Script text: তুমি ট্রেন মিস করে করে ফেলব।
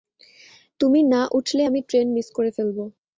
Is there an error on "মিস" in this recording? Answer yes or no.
no